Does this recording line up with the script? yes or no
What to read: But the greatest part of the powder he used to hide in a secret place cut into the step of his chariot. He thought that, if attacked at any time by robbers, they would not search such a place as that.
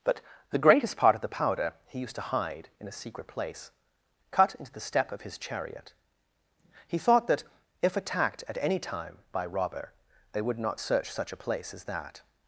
no